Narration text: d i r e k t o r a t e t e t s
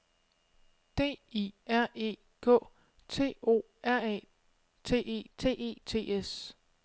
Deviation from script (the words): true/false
false